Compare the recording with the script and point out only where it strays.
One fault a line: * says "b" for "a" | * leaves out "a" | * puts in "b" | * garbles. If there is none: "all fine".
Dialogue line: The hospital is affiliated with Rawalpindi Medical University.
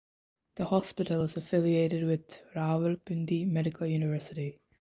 all fine